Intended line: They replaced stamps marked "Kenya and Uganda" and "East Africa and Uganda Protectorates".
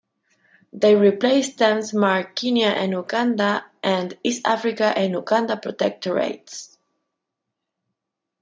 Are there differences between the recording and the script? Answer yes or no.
no